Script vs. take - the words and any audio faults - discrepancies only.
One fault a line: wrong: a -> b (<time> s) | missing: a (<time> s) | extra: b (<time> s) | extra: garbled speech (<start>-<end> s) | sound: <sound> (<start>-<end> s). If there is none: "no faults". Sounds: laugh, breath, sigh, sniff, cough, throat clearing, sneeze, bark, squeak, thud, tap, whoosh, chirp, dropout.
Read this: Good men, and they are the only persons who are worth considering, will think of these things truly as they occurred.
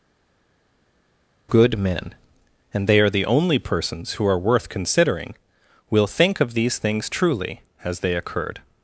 no faults